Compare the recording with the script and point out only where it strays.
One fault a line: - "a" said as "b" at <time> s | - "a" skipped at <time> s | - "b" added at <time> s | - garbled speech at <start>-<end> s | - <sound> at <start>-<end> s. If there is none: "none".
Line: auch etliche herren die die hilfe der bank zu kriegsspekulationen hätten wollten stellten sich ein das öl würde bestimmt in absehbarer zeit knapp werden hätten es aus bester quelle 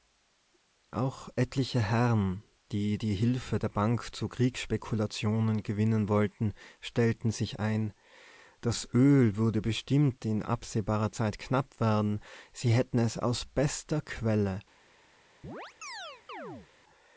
- "hätten" said as "gewinnen" at 5.6 s
- "sie" added at 12.5 s
- chirp at 15.4-16.7 s